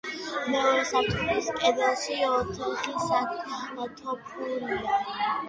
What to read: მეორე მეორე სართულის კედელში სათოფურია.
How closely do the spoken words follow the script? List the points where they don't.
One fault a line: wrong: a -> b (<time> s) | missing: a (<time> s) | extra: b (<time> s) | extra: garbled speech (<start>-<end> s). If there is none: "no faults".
missing: მეორე (0.8 s)
extra: ოთხი (2.3 s)